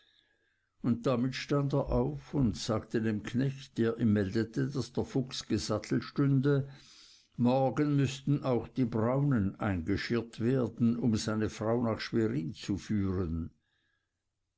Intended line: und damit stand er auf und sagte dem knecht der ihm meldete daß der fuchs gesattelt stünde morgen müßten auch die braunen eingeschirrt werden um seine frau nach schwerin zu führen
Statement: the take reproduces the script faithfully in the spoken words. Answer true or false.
true